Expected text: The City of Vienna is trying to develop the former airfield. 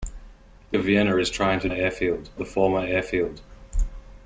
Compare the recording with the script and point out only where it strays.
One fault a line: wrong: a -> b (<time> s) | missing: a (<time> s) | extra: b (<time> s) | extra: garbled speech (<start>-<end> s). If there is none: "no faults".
missing: City (0.8 s)
wrong: develop -> airfield (1.7 s)